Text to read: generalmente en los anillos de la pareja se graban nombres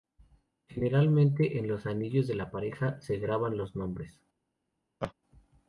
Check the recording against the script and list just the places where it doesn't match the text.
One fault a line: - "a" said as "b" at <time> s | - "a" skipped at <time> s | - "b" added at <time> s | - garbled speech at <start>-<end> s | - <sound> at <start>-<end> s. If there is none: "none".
- "los" added at 3.5 s
- laugh at 5.0-5.1 s